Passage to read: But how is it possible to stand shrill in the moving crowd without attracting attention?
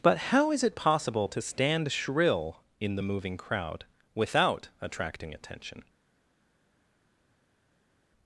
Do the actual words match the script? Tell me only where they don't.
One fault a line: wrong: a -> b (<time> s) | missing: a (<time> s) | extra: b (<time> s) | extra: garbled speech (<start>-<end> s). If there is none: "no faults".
no faults